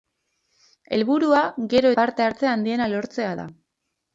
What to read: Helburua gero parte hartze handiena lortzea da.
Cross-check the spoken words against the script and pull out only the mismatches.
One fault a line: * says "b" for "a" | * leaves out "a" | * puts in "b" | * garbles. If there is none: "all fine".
all fine